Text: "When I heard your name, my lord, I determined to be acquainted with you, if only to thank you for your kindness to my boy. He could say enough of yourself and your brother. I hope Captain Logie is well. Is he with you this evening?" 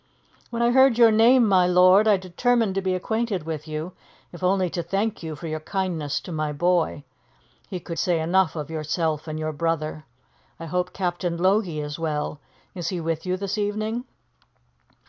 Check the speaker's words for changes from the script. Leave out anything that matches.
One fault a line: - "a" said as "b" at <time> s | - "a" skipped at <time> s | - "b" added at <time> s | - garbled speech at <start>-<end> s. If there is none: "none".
none